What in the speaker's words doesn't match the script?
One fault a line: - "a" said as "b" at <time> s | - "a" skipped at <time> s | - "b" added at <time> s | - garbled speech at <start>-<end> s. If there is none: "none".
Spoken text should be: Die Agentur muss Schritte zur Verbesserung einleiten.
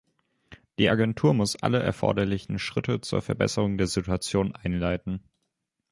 - "alle erforderlichen" added at 1.6 s
- "der Situation" added at 3.8 s